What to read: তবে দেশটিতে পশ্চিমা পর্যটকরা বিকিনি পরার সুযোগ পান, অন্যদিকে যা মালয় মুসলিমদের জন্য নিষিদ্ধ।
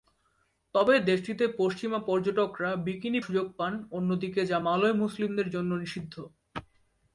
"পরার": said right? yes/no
no